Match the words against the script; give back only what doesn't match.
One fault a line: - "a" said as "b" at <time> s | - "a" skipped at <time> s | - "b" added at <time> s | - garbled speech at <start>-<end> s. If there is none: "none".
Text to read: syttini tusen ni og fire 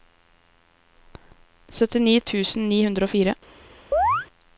- "hundre" added at 2.9 s